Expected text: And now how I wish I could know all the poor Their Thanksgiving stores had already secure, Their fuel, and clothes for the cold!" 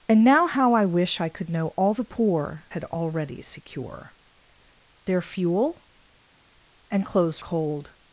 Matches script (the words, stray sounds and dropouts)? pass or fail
fail